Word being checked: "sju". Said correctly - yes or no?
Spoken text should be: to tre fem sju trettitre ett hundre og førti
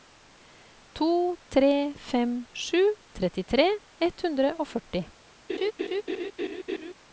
yes